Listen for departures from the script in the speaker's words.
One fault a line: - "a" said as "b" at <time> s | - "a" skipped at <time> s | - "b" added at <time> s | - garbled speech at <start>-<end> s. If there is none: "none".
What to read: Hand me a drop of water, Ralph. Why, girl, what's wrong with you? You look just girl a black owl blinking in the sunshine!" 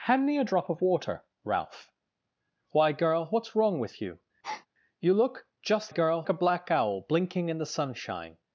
none